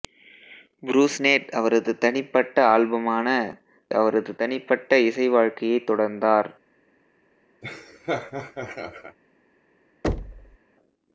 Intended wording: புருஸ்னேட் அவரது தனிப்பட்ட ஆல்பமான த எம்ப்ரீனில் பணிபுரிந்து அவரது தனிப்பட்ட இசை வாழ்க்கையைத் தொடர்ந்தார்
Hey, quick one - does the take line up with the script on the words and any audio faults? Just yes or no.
no